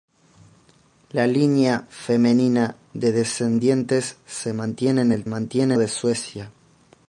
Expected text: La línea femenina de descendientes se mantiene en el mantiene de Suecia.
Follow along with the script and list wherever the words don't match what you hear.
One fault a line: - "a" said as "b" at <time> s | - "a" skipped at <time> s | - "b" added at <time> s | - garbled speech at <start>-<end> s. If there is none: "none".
none